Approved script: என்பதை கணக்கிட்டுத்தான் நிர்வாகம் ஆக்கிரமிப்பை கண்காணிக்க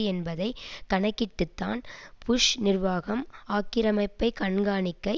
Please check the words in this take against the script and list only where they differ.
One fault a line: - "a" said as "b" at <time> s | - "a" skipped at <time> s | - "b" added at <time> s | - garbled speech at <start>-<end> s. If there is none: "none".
- "புஷ்" added at 2.2 s